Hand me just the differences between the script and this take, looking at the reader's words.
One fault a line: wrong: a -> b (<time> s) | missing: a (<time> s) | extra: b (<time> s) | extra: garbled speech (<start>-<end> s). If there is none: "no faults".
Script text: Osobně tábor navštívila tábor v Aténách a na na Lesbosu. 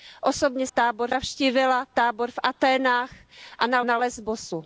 no faults